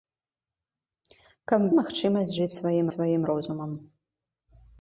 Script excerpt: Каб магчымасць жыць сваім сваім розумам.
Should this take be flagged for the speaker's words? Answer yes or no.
no